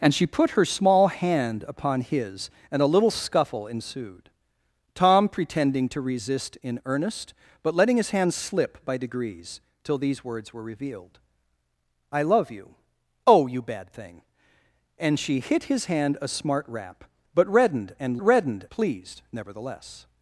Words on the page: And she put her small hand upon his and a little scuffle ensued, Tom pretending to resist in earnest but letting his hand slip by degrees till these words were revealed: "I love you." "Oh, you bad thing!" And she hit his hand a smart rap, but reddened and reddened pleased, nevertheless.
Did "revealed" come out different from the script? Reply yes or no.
no